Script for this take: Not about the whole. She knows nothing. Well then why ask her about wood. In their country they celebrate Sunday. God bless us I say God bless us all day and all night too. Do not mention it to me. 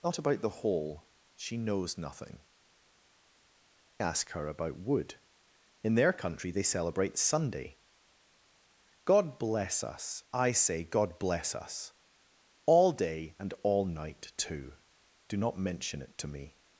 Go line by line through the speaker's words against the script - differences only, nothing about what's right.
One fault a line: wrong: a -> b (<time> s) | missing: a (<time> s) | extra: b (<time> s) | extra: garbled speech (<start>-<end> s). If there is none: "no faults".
missing: Well then why (2.4 s)